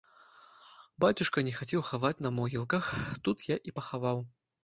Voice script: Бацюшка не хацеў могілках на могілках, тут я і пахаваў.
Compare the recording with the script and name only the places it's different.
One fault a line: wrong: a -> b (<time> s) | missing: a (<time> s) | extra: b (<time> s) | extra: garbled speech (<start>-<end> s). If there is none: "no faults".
wrong: могілках -> хаваць (1.9 s)